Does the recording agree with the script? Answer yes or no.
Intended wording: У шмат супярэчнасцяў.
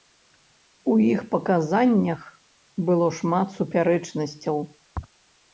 no